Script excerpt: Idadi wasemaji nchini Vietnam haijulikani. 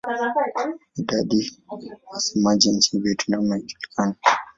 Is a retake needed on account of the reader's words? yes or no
yes